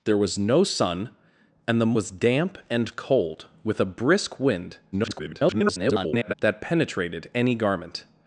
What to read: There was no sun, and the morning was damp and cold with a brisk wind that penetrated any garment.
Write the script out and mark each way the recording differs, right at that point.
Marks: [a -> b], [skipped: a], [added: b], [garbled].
There was no sun, and the [skipped: morning] was damp and cold with a brisk wind [garbled] that penetrated any garment.